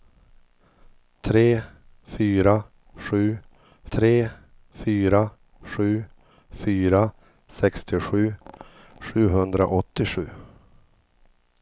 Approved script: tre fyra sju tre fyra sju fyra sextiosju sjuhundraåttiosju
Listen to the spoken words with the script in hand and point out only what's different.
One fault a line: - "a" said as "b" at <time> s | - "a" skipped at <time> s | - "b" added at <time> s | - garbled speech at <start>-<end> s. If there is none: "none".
none